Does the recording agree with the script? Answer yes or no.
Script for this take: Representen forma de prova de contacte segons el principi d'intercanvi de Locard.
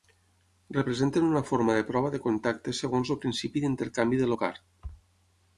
no